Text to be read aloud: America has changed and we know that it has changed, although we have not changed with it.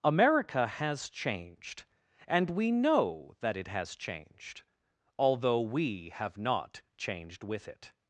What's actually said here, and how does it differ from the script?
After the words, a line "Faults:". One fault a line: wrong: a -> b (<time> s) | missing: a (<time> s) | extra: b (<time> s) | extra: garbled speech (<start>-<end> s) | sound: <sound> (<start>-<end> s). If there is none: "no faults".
America has changed and we know that it has changed, although we have not changed with it.
Faults:
no faults